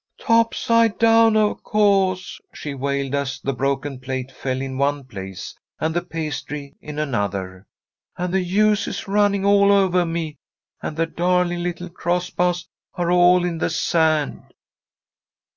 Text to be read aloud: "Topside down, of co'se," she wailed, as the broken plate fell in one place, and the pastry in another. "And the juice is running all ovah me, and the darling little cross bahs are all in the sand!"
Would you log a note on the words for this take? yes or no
no